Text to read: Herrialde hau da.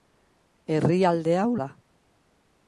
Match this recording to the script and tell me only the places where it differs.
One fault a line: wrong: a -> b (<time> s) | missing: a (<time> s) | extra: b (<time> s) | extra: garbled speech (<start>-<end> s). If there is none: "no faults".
no faults